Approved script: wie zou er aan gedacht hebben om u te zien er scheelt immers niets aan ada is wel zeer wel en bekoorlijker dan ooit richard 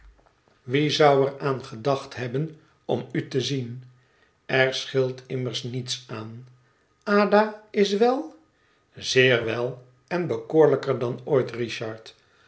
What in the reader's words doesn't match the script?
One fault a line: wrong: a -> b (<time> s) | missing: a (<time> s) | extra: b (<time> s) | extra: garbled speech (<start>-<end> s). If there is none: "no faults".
no faults